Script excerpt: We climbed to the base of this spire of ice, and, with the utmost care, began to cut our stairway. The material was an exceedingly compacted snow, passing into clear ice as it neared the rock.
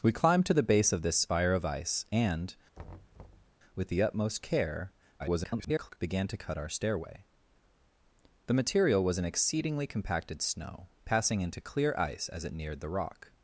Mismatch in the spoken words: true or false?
true